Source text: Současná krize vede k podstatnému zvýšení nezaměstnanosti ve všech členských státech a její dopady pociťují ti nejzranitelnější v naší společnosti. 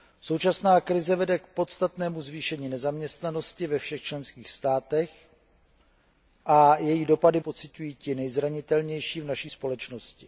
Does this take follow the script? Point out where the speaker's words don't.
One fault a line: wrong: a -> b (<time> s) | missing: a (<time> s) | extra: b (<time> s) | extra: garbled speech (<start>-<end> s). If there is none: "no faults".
no faults